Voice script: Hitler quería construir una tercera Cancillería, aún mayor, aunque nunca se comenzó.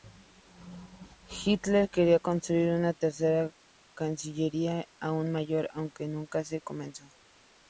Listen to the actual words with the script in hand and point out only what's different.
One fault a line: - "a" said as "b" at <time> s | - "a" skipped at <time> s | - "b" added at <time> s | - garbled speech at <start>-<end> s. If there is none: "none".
none